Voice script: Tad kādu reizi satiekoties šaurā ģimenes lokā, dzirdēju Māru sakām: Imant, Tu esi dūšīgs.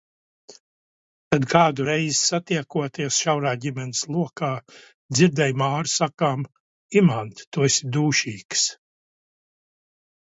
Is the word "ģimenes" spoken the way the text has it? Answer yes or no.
yes